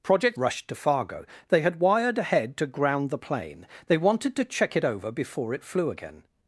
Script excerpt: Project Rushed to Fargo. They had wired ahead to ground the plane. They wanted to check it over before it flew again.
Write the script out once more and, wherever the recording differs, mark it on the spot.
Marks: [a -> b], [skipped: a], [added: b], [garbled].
Project Rushed to Fargo. They had wired ahead to ground the plane. They wanted to check it over before it flew again.